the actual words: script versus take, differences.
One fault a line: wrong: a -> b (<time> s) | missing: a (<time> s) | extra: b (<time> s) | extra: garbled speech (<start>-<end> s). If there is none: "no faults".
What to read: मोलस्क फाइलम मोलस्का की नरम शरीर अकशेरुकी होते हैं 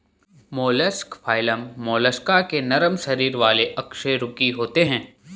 wrong: की -> के (2.4 s)
extra: वाले (3.4 s)